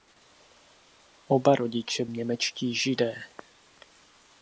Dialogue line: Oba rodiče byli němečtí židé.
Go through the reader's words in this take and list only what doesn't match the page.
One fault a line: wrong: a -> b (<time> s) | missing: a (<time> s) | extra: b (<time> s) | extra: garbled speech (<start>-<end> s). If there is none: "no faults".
missing: byli (2.0 s)